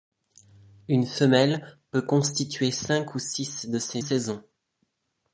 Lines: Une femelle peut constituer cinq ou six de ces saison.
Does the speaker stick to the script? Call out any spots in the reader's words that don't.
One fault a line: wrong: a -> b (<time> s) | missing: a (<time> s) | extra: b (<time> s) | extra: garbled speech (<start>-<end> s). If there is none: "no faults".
no faults